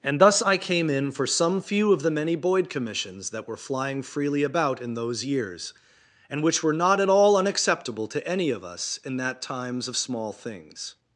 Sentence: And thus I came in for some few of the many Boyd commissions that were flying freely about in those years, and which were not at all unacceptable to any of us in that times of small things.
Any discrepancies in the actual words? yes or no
no